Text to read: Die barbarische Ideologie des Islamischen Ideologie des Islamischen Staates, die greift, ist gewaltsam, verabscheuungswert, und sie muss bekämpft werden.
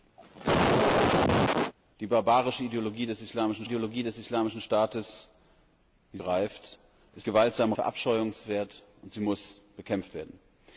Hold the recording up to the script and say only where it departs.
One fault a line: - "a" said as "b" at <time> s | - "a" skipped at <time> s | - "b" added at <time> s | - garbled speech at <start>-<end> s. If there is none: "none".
none